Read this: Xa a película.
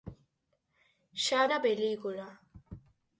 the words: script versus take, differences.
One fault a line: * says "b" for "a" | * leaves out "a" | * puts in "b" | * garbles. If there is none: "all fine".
all fine